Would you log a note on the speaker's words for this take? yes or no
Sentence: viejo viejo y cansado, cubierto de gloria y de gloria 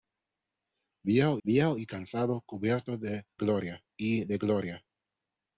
no